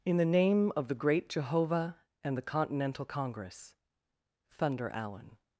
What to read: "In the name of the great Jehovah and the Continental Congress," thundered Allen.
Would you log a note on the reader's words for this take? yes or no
yes